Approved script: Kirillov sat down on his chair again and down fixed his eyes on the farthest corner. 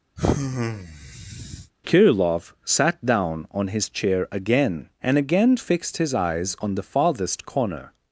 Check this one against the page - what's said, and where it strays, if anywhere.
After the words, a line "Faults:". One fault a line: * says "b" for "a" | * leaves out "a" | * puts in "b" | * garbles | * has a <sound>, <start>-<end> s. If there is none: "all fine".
Kirillov sat down on his chair again and again fixed his eyes on the farthest corner.
Faults:
* has a sigh, 0.2-1.7 s
* says "again" for "down"